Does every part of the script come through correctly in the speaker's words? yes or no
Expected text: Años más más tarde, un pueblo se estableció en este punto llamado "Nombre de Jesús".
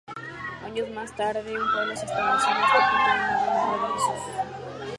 no